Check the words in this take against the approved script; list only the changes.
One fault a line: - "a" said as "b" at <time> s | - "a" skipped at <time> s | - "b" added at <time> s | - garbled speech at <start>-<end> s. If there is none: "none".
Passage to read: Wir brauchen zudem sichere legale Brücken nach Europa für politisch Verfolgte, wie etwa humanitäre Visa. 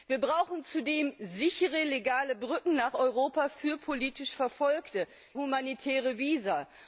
- "wie etwa" skipped at 5.1 s